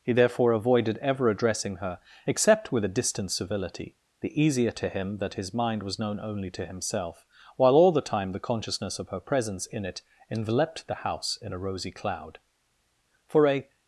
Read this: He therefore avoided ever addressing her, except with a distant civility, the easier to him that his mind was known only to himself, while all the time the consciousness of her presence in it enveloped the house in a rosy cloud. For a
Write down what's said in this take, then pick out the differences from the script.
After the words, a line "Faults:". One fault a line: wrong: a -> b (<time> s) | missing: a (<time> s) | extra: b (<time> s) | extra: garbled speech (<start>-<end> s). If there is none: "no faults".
He therefore avoided ever addressing her, except with a distant civility, the easier to him that his mind was known only to himself, while all the time the consciousness of her presence in it enveloped the house in a rosy cloud. For a
Faults:
no faults